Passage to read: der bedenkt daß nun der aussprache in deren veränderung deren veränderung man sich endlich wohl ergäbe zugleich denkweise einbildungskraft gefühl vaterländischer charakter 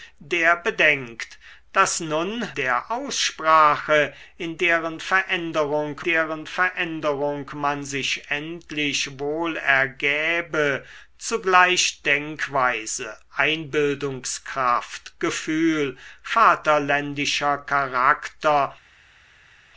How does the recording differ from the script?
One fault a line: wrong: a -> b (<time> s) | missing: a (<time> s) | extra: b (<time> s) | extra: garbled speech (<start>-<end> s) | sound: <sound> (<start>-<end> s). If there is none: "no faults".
no faults